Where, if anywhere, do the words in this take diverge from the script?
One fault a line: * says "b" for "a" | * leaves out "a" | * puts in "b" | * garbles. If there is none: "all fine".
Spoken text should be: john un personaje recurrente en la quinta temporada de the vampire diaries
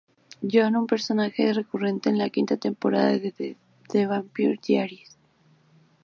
all fine